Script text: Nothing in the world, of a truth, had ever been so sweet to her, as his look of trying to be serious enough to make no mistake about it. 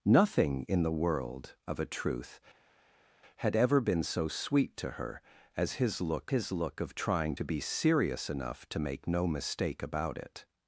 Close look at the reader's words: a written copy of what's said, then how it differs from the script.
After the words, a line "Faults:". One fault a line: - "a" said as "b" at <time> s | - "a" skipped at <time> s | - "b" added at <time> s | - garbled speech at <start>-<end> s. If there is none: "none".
Nothing in the world, of a truth, had ever been so sweet to her, as his look his look of trying to be serious enough to make no mistake about it.
Faults:
- "his look" added at 6.3 s